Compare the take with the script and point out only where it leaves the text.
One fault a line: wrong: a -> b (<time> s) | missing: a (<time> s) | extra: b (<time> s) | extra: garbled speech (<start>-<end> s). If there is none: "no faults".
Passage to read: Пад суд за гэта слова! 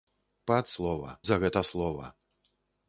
wrong: суд -> слова (0.7 s)